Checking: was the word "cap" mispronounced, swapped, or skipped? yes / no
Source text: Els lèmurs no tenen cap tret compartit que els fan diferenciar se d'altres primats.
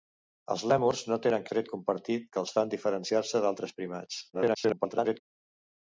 yes